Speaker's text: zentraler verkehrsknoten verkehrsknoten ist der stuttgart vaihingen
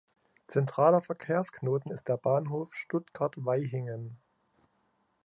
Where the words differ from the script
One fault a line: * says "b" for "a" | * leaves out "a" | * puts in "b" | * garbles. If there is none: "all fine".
* leaves out "verkehrsknoten"
* puts in "bahnhof"